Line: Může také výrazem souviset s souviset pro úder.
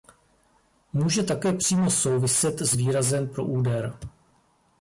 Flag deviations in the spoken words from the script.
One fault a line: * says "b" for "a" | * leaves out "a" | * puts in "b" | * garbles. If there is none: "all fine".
* says "přímo" for "výrazem"
* says "výrazem" for "souviset"